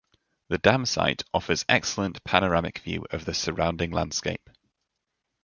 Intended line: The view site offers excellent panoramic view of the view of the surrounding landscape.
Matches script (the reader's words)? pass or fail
fail